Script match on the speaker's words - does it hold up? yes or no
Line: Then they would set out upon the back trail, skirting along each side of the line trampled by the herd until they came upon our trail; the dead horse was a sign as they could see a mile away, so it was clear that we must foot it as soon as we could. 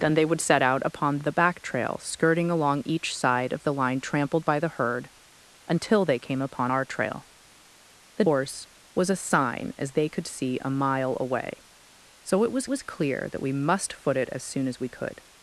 no